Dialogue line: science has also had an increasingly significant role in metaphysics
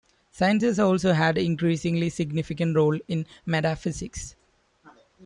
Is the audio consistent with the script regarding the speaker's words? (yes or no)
yes